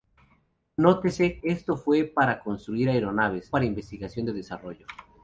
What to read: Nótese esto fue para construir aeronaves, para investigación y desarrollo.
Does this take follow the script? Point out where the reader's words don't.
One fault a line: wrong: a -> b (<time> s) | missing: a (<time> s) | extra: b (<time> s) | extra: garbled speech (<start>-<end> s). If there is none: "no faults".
no faults